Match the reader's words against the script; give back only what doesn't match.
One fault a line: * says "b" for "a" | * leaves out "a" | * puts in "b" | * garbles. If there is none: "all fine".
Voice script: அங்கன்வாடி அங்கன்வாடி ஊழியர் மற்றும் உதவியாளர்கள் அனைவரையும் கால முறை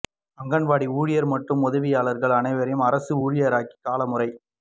* leaves out "அங்கன்வாடி"
* puts in "அரசு ஊழியராக்கி"